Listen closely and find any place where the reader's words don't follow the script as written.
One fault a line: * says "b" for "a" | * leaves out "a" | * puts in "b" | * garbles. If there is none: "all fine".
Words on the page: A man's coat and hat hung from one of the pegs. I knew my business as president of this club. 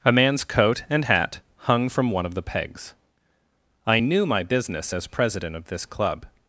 all fine